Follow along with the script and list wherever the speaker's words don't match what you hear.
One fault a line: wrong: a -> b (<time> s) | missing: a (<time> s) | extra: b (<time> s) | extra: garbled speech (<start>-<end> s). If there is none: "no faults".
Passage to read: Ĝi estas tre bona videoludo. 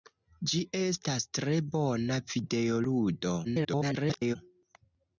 extra: garbled speech (3.4-4.4 s)